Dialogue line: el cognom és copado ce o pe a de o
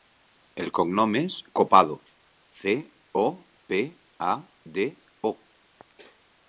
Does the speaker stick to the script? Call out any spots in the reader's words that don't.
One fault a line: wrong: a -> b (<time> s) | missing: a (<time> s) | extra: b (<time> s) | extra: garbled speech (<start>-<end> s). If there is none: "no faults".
no faults